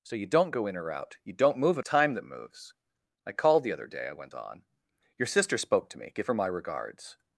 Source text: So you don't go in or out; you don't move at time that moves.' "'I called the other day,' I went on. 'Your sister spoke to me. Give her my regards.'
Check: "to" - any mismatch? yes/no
no